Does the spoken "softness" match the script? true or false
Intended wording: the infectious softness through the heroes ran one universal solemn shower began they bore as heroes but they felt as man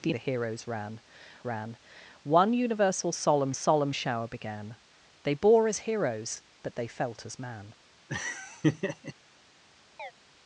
false